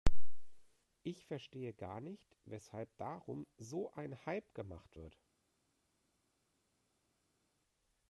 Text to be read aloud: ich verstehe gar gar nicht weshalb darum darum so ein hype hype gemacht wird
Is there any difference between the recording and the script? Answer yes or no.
yes